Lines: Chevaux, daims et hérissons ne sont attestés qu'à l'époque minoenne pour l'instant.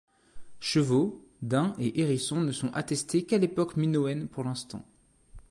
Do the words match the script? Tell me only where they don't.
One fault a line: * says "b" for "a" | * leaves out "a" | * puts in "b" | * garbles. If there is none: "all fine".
all fine